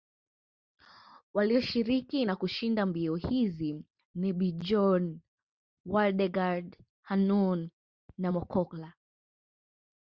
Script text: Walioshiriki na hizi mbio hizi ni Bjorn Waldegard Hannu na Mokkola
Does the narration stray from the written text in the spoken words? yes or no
yes